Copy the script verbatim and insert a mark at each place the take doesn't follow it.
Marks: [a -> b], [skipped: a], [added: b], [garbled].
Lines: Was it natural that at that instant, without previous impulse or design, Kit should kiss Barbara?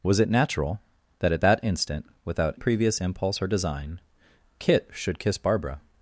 Was it natural that at that instant, without previous impulse or design, Kit should kiss Barbara?